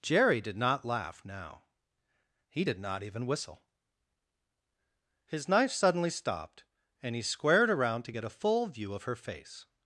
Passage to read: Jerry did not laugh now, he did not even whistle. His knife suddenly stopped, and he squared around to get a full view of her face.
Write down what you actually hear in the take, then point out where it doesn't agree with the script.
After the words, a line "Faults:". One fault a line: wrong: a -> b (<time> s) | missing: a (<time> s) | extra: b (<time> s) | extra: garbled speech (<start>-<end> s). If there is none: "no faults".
Jerry did not laugh now, he did not even whistle. His knife suddenly stopped, and he squared around to get a full view of her face.
Faults:
no faults